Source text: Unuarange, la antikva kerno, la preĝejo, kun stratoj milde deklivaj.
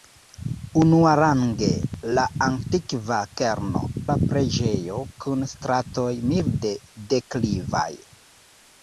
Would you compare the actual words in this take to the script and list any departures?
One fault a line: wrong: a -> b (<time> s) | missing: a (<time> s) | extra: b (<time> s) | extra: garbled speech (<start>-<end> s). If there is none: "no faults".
no faults